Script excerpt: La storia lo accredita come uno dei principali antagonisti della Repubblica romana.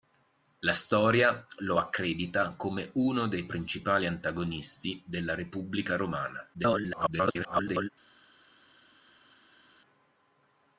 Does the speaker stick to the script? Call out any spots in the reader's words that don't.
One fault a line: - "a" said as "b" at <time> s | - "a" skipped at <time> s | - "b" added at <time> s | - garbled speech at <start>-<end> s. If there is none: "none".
- garbled speech at 6.5-7.9 s